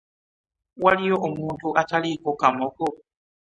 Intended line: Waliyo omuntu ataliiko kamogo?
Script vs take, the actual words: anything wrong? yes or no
no